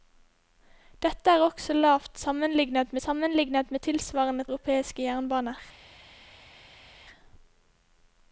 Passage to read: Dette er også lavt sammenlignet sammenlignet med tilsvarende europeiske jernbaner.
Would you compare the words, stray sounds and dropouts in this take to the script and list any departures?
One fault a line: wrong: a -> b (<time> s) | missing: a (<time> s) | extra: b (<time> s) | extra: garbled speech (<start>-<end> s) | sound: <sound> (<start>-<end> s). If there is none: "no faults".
no faults